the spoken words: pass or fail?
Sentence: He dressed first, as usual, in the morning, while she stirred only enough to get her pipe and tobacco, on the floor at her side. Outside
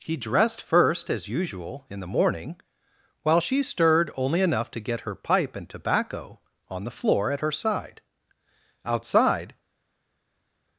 pass